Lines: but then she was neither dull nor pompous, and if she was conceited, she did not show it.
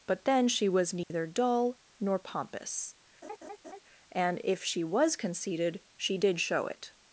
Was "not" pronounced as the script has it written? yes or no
no